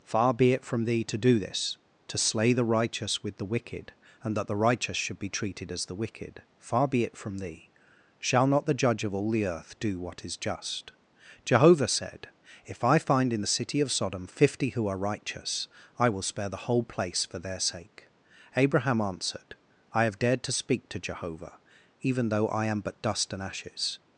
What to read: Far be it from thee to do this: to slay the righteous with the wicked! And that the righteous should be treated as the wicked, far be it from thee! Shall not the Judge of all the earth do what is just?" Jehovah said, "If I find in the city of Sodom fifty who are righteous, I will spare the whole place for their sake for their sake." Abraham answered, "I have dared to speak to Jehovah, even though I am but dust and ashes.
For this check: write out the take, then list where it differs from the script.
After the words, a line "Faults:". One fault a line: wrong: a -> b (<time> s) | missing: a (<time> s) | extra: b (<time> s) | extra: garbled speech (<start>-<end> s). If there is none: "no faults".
Far be it from thee to do this: to slay the righteous with the wicked! And that the righteous should be treated as the wicked, far be it from thee! Shall not the Judge of all the earth do what is just?" Jehovah said, "If I find in the city of Sodom fifty who are righteous, I will spare the whole place for their sake." Abraham answered, "I have dared to speak to Jehovah, even though I am but dust and ashes.
Faults:
missing: for their sake (18.1 s)